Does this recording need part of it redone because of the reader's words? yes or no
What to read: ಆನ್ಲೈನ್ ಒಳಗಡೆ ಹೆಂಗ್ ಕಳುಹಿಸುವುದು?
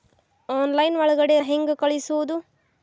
no